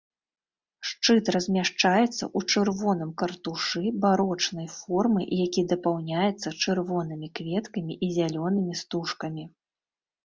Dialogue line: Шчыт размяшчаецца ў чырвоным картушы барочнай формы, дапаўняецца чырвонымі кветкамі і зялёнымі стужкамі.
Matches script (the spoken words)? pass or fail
fail